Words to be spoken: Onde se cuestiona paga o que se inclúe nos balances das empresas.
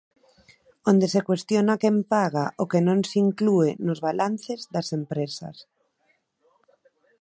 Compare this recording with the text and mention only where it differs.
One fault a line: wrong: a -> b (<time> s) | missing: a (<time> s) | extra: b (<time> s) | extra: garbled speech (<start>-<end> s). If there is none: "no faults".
extra: quen (1.8 s)
extra: non (2.9 s)